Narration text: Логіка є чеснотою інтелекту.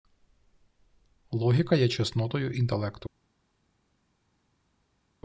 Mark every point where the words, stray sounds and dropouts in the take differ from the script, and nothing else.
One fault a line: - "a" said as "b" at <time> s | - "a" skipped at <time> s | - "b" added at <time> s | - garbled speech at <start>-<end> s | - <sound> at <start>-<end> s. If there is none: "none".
none